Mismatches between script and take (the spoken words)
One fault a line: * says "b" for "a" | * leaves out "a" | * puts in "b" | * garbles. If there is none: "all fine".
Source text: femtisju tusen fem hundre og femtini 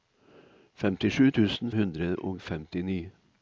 * leaves out "fem"